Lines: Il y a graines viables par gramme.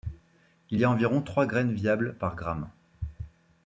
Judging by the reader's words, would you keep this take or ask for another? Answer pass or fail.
fail